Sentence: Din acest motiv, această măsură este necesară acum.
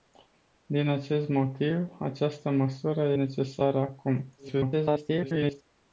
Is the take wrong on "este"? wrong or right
wrong